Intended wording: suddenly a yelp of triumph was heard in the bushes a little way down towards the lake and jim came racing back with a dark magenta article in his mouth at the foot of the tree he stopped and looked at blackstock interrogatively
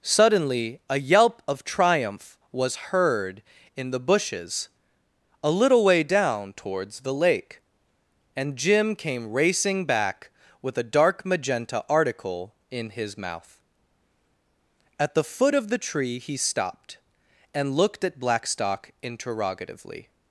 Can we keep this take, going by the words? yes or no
yes